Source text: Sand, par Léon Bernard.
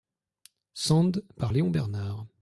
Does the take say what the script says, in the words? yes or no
yes